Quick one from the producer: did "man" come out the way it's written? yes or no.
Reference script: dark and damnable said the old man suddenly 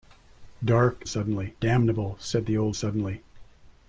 no